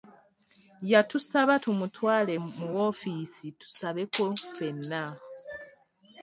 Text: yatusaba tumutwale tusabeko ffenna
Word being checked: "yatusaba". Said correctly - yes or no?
yes